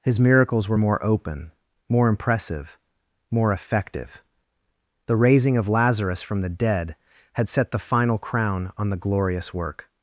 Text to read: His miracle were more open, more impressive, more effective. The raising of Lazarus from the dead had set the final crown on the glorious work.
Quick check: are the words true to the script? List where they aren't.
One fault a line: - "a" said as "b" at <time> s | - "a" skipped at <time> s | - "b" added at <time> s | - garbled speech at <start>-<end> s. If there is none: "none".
- "miracle" said as "miracles" at 0.2 s